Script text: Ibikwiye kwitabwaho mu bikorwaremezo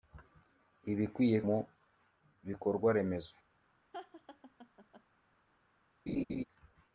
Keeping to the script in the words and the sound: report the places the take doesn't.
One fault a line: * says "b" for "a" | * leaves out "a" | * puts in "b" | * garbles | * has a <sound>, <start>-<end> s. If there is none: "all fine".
* leaves out "kwitabwaho"
* has a laugh, 3.9-5.0 s
* has a laugh, 6.1-6.4 s